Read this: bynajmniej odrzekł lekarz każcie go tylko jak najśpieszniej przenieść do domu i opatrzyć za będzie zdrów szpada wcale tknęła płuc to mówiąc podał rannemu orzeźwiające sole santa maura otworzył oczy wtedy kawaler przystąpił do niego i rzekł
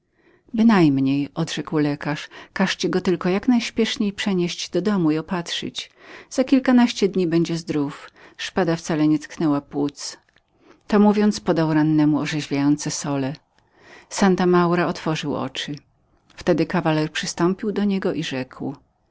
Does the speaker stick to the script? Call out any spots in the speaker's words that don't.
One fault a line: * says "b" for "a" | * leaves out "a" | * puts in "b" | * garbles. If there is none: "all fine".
* puts in "kilkanaście dni"
* puts in "nie"